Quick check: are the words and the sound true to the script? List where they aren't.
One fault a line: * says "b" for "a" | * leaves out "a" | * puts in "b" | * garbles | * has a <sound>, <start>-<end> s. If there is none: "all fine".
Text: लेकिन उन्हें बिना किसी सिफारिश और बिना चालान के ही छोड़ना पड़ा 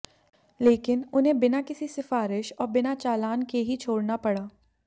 all fine